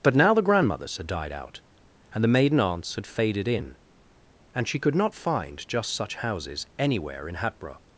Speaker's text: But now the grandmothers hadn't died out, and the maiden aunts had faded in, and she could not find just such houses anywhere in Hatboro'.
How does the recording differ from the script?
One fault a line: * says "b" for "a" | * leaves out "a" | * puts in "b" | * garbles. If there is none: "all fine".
* says "had" for "hadn't"